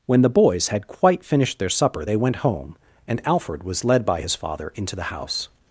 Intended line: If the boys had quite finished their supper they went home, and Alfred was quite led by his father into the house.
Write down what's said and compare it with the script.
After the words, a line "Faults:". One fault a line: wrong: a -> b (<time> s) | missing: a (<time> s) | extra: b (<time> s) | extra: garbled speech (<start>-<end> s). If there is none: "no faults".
When the boys had quite finished their supper they went home, and Alfred was led by his father into the house.
Faults:
wrong: If -> When (0.1 s)
missing: quite (3.8 s)